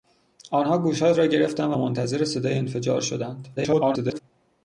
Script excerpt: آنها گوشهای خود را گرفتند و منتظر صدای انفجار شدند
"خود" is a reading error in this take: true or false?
true